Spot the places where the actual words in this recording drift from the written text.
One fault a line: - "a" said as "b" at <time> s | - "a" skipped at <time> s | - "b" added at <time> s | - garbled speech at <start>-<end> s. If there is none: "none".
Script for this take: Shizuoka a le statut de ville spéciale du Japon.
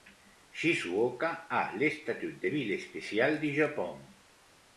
none